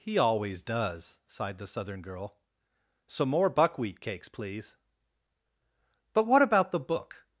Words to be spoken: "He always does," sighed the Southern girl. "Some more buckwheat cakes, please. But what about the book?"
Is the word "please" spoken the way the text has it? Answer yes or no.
yes